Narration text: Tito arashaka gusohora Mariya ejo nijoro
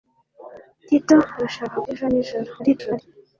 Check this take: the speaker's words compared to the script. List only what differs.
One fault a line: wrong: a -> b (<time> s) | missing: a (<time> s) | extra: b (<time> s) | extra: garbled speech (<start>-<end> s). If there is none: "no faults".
missing: gusohora Mariya (1.8 s)
extra: garbled speech (2.6-3.0 s)